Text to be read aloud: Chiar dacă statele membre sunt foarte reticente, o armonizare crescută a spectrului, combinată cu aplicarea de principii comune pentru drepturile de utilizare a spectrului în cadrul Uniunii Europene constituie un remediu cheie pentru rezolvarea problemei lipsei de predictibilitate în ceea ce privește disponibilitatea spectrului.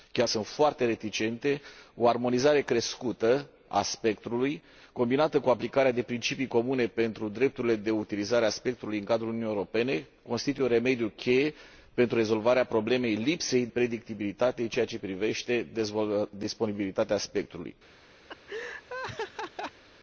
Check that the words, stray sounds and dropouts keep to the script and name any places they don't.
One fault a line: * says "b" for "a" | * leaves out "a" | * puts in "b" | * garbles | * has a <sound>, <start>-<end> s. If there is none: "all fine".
* leaves out "dacă statele membre"
* leaves out "de"
* has a laugh, 18.3-19.8 s